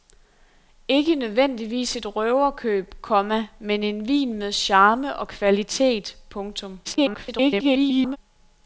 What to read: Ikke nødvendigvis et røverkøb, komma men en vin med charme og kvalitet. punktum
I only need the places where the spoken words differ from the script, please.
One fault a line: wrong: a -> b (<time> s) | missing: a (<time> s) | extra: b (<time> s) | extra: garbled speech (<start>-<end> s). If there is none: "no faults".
extra: garbled speech (6.8-8.2 s)